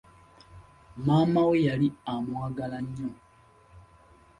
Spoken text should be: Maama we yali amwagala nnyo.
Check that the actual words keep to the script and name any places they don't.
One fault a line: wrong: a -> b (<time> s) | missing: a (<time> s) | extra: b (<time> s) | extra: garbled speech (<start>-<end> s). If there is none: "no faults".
no faults